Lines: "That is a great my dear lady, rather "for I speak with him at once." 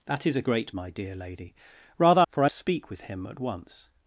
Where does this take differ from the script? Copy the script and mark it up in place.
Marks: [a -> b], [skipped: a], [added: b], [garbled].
"That is a great my dear lady, rather "for I speak with him at once."